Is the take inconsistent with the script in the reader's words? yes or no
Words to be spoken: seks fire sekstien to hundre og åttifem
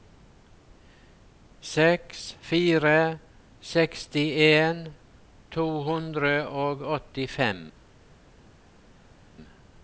no